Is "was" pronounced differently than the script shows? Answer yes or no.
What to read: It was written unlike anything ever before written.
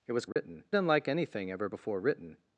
no